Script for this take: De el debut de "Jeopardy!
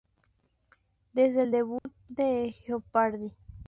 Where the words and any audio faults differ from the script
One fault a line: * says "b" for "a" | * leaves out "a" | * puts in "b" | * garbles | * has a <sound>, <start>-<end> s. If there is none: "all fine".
* says "Desde" for "De"
* has a dropout, 1.8-1.9 s